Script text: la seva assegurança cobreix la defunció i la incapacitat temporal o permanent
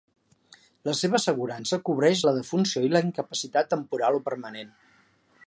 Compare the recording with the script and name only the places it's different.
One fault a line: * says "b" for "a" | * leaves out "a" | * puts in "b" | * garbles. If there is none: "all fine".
all fine